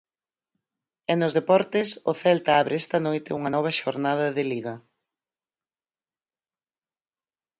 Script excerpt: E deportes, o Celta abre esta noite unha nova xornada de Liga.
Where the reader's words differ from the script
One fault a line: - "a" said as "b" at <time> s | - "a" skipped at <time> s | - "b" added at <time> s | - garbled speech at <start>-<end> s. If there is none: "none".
- "nos" added at 1.2 s